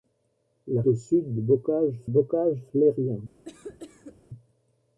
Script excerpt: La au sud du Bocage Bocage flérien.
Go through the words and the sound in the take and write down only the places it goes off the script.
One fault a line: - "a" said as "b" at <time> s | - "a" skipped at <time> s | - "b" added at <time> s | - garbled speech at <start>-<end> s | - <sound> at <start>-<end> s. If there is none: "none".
- cough at 3.4-4.2 s